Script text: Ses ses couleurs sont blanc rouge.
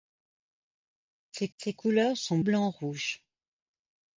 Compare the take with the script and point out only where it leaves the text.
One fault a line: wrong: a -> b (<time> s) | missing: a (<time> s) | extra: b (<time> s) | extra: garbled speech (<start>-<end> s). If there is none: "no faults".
no faults